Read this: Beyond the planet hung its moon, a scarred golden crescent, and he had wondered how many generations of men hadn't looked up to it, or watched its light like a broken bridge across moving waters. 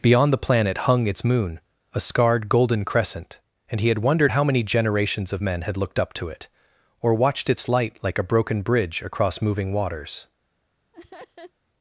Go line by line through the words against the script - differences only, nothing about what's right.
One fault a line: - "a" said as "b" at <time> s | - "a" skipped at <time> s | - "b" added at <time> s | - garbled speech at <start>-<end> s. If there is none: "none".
- "hadn't" said as "had" at 5.6 s